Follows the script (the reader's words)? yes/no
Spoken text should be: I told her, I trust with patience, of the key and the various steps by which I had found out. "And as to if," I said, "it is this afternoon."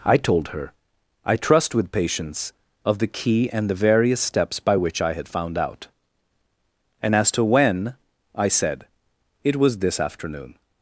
no